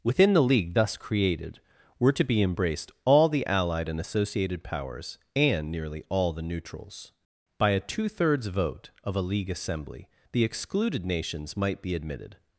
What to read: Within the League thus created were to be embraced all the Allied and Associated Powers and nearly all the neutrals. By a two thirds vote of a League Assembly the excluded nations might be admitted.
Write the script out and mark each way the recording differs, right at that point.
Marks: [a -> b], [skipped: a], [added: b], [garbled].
Within the League thus created were to be embraced all the Allied and Associated Powers and nearly all the neutrals. By a two thirds vote of a League Assembly the excluded nations might be admitted.